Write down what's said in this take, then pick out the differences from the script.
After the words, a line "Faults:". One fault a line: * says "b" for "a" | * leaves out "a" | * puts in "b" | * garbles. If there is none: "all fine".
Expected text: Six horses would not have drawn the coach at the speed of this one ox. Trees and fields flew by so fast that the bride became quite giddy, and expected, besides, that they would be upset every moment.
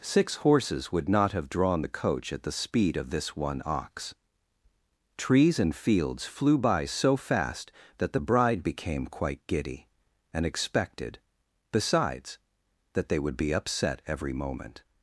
Six horses would not have drawn the coach at the speed of this one ox. Trees and fields flew by so fast that the bride became quite giddy, and expected, besides, that they would be upset every moment.
Faults:
all fine